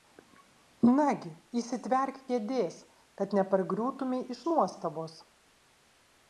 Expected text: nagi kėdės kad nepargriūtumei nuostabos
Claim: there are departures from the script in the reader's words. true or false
true